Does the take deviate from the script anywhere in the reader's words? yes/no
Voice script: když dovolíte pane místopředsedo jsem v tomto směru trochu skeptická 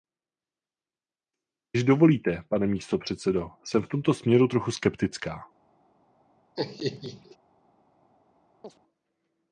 no